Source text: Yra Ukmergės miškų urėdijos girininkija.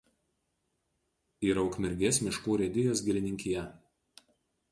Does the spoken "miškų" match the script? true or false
true